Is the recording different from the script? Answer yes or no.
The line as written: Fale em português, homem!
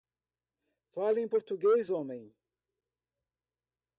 no